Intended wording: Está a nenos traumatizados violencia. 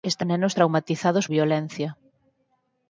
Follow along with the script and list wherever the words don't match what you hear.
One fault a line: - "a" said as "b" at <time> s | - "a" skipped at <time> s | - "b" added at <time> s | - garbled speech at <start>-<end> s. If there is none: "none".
none